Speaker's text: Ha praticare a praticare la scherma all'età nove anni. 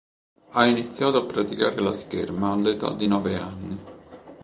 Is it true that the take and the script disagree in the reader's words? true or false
true